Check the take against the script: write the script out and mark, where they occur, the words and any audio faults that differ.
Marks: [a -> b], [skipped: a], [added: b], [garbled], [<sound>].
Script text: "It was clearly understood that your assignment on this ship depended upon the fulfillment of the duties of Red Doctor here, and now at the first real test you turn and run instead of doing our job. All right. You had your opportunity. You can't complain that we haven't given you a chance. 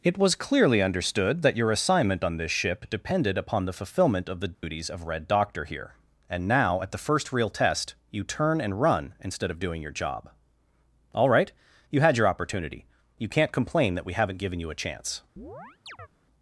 "It was clearly understood that your assignment on this ship depended upon the fulfillment of the duties [dropout] of Red Doctor here, and now at the first real test you turn and run instead of doing [our -> your] job. All right. You had your opportunity. You can't complain that we haven't given you a chance. [chirp]